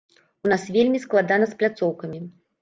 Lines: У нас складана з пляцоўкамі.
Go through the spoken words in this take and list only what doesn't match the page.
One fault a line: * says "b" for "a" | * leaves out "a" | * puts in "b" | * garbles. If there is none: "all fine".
* puts in "вельмі"